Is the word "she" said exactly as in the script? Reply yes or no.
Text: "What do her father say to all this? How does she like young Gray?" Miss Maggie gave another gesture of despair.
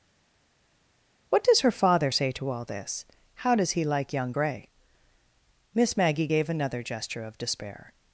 no